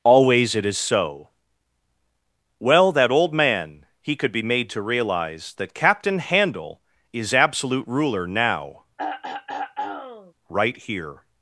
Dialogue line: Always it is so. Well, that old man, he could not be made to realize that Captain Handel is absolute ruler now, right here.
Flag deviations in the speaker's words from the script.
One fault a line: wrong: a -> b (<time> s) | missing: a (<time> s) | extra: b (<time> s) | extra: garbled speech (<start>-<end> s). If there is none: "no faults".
missing: not (4.3 s)